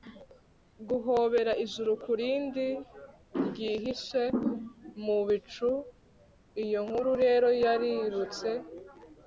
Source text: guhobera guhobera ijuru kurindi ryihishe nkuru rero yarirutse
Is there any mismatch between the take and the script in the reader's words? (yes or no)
yes